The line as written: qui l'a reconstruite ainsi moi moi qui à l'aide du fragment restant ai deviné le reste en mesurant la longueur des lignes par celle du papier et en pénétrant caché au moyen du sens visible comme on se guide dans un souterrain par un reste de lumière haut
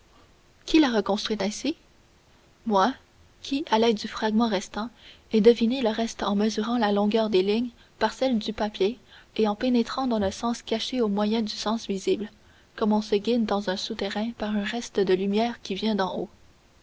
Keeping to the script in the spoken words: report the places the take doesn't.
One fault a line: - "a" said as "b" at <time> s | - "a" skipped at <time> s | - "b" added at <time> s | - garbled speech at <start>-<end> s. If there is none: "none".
- "moi" skipped at 2.9 s
- "dans le sens" added at 10.1 s
- "qui vient d'en" added at 15.6 s